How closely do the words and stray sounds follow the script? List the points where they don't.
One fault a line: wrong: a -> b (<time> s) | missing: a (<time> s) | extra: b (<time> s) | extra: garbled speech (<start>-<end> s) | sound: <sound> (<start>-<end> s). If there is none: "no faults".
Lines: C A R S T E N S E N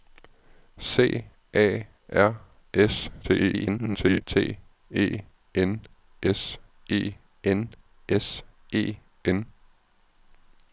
extra: garbled speech (3.2-4.2 s)
extra: S E N (8.1 s)